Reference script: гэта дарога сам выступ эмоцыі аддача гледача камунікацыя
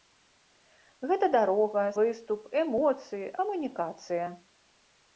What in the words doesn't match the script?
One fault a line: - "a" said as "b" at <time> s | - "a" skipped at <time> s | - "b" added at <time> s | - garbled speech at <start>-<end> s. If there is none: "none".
- "сам" skipped at 1.8 s
- "аддача гледача" skipped at 3.3 s